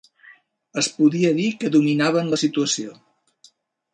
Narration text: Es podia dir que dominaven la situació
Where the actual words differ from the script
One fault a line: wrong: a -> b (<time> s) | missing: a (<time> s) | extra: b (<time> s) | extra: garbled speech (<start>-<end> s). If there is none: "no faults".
no faults